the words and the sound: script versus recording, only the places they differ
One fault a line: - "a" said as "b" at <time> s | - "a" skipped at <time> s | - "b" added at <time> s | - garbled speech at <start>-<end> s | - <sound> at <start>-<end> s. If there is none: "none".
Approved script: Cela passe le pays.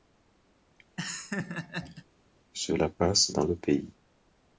- laugh at 1.0-2.1 s
- "dans" added at 3.3 s